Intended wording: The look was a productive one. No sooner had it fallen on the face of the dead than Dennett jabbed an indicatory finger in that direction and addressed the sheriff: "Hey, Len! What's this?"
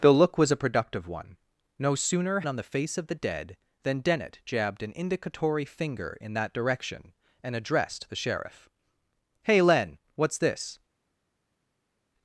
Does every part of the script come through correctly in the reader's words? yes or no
no